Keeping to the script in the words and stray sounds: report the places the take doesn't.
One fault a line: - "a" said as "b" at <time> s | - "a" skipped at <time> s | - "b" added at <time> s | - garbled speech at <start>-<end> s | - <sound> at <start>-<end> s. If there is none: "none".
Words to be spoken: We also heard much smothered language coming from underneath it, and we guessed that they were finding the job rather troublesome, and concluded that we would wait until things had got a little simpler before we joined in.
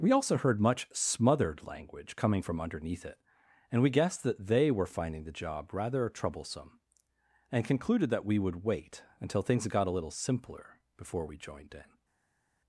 - "had" skipped at 9.7 s